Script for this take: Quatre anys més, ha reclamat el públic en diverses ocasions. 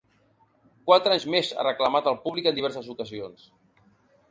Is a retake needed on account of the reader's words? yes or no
no